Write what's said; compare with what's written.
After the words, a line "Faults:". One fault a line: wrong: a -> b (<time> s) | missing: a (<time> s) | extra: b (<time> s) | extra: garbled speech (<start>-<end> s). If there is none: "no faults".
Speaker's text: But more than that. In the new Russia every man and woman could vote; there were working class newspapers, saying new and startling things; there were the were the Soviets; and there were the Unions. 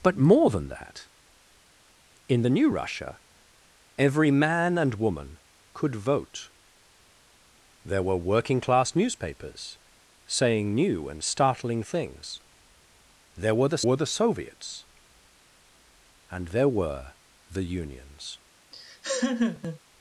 But more than that. In the new Russia every man and woman could vote; there were working class newspapers, saying new and startling things; there were the were the Soviets; and there were the Unions.
Faults:
no faults